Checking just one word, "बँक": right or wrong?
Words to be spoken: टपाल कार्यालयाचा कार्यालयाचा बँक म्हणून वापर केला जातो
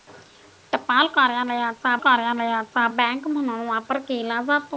right